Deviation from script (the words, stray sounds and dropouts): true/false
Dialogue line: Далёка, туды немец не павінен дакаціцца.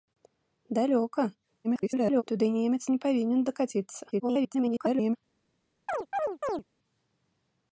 true